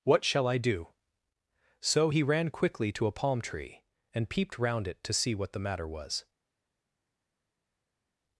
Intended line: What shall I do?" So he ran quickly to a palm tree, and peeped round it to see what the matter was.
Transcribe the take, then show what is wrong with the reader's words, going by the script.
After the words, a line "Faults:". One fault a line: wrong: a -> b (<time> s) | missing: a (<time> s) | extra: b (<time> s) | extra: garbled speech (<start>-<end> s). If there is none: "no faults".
What shall I do?" So he ran quickly to a palm tree, and peeped round it to see what the matter was.
Faults:
no faults